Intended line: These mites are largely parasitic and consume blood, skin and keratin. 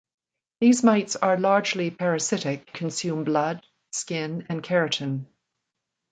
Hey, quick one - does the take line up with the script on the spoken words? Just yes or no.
no